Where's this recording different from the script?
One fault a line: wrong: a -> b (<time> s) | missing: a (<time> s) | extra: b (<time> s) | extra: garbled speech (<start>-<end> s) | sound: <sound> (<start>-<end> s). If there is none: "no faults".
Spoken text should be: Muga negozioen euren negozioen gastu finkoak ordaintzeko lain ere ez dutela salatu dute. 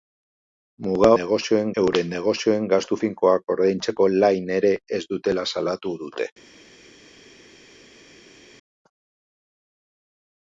no faults